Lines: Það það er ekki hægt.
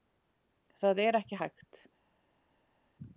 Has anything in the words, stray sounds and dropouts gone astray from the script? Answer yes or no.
yes